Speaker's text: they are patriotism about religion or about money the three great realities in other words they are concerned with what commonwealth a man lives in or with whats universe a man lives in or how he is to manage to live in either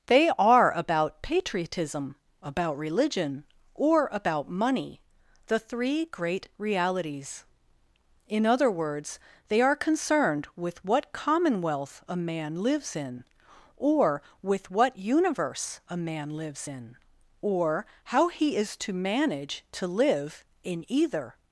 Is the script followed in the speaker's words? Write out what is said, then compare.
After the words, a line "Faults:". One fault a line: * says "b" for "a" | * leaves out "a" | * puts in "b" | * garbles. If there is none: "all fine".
they are about patriotism about religion or about money the three great realities in other words they are concerned with what commonwealth a man lives in or with what universe a man lives in or how he is to manage to live in either
Faults:
* puts in "about"
* says "what" for "whats"